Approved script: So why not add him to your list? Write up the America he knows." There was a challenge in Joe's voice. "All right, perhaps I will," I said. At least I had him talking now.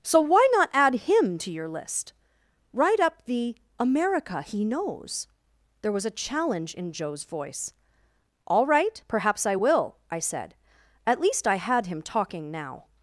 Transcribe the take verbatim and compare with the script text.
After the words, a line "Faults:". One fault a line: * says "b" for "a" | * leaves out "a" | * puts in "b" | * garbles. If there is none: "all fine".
So why not add him to your list? Write up the America he knows." There was a challenge in Joe's voice. "All right, perhaps I will," I said. At least I had him talking now.
Faults:
all fine